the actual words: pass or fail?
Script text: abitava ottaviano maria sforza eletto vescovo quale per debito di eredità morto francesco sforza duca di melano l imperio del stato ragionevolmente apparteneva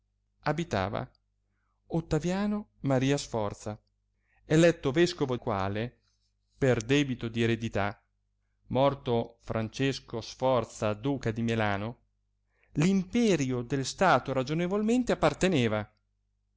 pass